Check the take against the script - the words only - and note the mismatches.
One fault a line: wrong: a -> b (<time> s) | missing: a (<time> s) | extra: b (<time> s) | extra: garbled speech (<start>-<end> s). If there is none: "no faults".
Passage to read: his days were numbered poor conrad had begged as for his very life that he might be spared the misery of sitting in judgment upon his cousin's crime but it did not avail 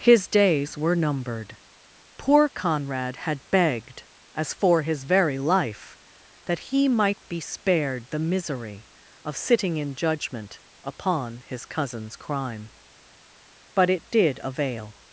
missing: not (14.4 s)